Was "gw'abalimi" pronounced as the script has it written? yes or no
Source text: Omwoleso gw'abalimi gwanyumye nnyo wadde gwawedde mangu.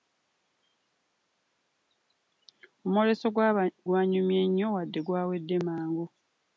no